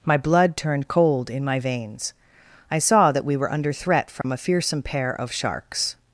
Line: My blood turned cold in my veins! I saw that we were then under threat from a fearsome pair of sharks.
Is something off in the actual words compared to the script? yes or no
yes